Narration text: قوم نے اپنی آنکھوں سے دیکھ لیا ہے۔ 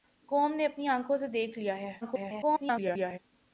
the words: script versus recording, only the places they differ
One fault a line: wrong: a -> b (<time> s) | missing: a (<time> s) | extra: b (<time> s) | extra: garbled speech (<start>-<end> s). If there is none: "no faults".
extra: garbled speech (2.0-3.2 s)